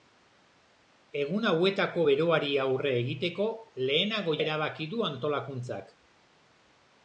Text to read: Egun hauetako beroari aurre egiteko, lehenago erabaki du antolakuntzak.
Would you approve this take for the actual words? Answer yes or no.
yes